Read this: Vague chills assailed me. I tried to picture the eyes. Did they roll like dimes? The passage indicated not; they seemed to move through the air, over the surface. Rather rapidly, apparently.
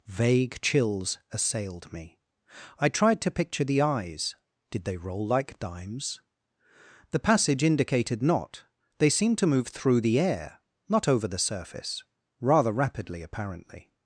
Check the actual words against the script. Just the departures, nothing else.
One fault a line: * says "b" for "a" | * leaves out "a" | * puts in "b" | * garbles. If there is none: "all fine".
* puts in "not"